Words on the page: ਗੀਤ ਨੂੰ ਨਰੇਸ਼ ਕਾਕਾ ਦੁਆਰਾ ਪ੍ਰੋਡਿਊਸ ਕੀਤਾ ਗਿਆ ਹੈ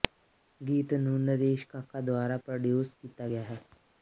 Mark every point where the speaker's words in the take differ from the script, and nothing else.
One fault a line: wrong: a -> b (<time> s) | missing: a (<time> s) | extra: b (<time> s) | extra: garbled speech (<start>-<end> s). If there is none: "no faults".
no faults